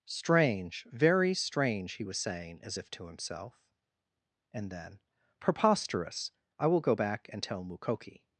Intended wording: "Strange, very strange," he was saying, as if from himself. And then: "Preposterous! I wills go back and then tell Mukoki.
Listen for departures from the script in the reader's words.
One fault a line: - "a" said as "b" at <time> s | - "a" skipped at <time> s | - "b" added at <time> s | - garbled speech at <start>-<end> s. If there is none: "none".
- "from" said as "to" at 2.9 s
- "wills" said as "will" at 6.7 s
- "then" skipped at 7.4 s